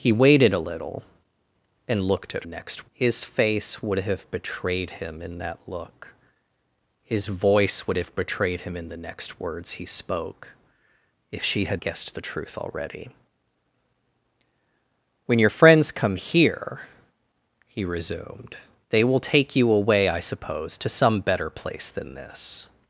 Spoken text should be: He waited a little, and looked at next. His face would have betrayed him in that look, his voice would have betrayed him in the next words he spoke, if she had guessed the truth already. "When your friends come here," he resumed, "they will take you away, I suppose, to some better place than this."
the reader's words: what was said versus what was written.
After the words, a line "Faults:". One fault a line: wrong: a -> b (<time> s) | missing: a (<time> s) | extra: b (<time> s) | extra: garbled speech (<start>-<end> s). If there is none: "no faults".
He waited a little, and looked at next. His face would have betrayed him in that look, his voice would have betrayed him in the next words he spoke, if she had guessed the truth already. "When your friends come here," he resumed, "they will take you away, I suppose, to some better place than this."
Faults:
no faults